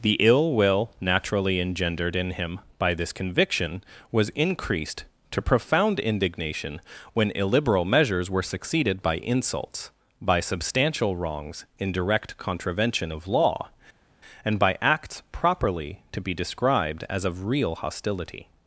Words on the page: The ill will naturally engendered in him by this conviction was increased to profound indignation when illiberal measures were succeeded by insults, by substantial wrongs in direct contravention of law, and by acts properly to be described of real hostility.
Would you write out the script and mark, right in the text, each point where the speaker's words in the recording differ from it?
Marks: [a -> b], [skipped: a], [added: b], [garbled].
The ill will naturally engendered in him by this conviction was increased to profound indignation when illiberal measures were succeeded by insults, by substantial wrongs in direct contravention of law, and by acts properly to be described [added: as] of real hostility.